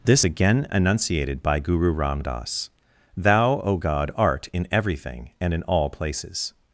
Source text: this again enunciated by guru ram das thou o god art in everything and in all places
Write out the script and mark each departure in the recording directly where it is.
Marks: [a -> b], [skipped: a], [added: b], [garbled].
this again enunciated by guru ram das thou o god art in everything and in all places